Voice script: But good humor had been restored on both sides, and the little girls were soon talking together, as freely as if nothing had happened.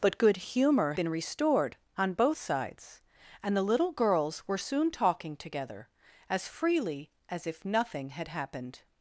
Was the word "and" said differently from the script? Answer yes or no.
no